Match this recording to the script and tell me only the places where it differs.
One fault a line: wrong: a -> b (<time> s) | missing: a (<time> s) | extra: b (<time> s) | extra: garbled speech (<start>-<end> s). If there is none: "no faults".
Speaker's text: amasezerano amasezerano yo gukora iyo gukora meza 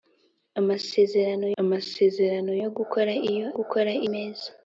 no faults